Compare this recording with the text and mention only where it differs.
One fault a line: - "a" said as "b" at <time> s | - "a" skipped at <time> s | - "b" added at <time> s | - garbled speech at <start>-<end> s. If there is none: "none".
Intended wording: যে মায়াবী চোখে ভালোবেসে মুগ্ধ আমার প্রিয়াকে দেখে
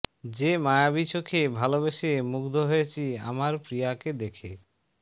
- "হয়েছি" added at 2.7 s